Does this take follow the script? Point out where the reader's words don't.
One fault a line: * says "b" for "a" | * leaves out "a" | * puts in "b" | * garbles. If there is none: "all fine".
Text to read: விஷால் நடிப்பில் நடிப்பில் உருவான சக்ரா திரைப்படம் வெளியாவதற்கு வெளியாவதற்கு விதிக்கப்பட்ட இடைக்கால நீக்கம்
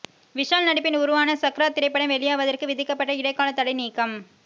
* leaves out "நடிப்பில்"
* leaves out "வெளியாவதற்கு"
* puts in "தடை"